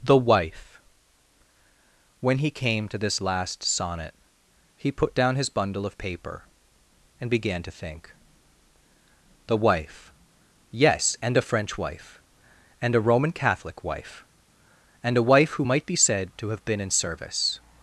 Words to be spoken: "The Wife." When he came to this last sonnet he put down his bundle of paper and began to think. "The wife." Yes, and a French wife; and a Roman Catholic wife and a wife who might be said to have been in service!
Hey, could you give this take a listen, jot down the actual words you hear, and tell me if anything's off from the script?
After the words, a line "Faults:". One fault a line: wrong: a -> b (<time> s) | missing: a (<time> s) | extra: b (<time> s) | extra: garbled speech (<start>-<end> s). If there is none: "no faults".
"The Wife." When he came to this last sonnet he put down his bundle of paper and began to think. "The wife." Yes, and a French wife; and a Roman Catholic wife and a wife who might be said to have been in service!
Faults:
no faults